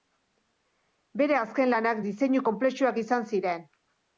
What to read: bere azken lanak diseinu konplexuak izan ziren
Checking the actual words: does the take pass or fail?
pass